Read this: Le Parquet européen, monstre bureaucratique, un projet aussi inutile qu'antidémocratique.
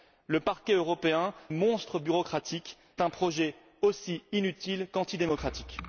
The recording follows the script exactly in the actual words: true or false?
true